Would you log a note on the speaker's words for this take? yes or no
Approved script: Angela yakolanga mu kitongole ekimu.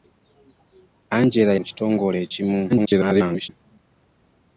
yes